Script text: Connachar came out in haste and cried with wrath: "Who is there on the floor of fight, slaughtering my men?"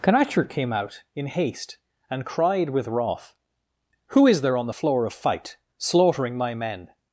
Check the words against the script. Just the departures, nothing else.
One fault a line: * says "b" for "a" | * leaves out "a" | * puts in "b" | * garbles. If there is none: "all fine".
all fine